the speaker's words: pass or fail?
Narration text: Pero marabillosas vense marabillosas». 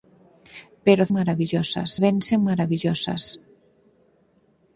pass